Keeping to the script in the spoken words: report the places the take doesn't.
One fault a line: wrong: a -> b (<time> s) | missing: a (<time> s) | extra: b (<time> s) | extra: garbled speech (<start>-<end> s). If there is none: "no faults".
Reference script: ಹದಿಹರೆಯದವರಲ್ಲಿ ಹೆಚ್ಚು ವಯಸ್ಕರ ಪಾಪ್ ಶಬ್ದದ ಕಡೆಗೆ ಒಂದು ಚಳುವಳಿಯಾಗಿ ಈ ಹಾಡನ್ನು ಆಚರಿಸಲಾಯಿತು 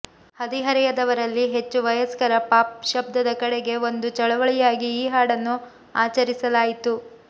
no faults